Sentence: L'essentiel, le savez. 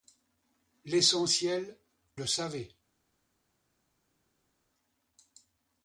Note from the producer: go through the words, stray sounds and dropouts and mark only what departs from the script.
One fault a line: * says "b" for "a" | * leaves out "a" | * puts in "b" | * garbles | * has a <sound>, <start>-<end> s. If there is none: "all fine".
all fine